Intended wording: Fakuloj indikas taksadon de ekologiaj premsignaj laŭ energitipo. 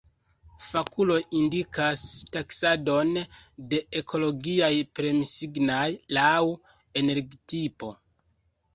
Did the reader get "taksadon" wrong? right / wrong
right